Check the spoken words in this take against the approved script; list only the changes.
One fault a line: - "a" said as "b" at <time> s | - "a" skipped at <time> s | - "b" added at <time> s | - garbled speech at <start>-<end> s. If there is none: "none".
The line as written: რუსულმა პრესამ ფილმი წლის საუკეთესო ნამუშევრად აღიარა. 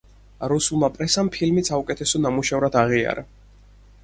- "წლის" skipped at 1.6 s